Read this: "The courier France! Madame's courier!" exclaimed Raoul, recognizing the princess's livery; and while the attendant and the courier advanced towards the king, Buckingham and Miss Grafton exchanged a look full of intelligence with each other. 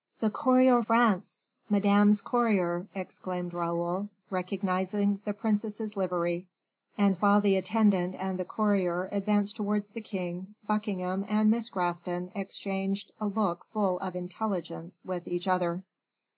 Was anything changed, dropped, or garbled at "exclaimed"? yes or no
no